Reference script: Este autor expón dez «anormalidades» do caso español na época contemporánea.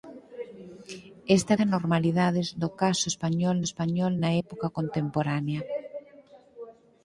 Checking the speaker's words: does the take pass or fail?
fail